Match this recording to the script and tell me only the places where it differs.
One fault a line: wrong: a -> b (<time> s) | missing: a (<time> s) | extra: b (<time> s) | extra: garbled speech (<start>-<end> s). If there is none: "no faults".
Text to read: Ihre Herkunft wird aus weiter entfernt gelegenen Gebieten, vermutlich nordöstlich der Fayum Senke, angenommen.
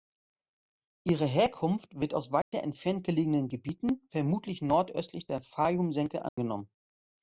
no faults